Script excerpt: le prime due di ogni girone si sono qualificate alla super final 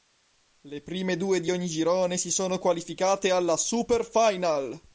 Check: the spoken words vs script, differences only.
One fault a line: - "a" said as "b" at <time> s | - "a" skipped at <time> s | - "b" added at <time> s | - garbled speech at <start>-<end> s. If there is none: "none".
none